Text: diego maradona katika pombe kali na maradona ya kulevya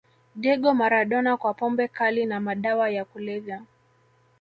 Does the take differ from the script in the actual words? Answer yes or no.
yes